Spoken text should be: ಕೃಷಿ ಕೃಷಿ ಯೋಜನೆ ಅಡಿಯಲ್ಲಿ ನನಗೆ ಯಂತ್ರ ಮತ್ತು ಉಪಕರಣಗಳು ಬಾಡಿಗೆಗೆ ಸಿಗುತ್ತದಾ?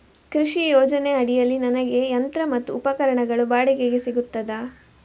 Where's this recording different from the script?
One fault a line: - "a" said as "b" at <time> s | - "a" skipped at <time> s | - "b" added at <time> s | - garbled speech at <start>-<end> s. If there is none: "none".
- "ಕೃಷಿ" skipped at 0.7 s